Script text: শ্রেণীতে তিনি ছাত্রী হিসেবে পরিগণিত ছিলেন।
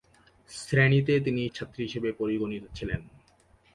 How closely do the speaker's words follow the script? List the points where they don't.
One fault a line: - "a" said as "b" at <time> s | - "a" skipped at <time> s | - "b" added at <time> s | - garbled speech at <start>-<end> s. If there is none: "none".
none